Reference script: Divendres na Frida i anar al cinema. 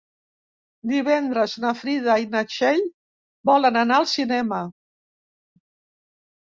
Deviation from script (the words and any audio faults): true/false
true